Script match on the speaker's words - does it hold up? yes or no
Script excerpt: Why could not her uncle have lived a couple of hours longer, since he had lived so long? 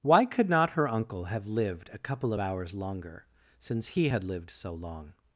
yes